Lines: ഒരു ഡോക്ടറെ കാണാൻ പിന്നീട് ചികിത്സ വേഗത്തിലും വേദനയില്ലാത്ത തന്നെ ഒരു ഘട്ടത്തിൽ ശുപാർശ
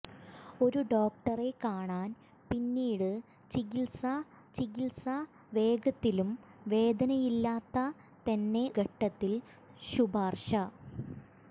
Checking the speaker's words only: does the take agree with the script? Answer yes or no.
no